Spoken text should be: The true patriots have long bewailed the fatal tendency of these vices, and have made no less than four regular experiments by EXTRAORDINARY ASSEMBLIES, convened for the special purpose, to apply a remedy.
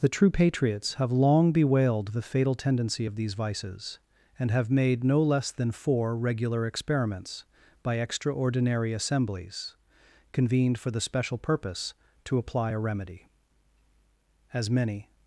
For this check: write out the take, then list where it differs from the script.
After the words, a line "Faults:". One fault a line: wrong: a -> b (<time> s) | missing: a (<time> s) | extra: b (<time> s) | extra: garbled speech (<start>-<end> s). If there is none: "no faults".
The true patriots have long bewailed the fatal tendency of these vices, and have made no less than four regular experiments by EXTRAORDINARY ASSEMBLIES, convened for the special purpose, to apply a remedy. As many
Faults:
extra: As many (14.5 s)